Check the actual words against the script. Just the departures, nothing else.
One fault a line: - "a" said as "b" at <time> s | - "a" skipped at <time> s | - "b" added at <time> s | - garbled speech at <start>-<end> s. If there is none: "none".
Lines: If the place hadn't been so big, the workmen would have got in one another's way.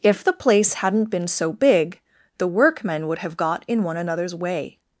none